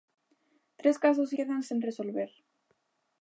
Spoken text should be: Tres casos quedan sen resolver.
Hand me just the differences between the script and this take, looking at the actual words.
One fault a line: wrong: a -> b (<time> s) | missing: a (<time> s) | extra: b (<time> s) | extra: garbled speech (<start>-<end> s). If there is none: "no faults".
no faults